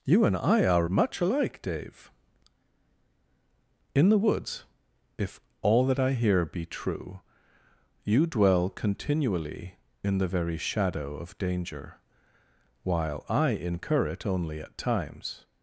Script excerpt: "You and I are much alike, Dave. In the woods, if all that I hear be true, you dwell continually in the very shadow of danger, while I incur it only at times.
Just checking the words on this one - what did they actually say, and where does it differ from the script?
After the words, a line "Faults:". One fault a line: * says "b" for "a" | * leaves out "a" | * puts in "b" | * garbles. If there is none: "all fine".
"You and I are much alike, Dave. In the woods, if all that I hear be true, you dwell continually in the very shadow of danger, while I incur it only at times.
Faults:
all fine